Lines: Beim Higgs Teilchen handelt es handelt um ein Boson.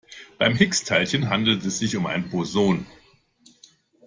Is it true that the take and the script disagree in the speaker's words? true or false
true